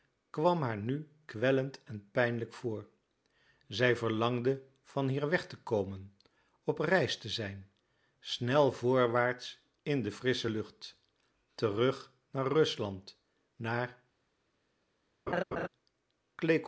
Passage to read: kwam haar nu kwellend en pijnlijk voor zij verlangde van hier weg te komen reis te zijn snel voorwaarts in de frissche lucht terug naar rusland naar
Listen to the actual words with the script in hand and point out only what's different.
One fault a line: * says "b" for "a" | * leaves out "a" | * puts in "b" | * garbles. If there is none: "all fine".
* puts in "op"